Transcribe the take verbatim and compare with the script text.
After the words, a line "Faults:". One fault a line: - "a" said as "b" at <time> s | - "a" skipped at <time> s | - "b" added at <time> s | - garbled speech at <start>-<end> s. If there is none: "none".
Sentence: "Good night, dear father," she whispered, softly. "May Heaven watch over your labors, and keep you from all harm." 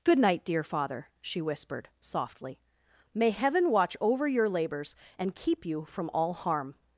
"Good night, dear father," she whispered, softly. "May Heaven watch over your labors, and keep you from all harm."
Faults:
none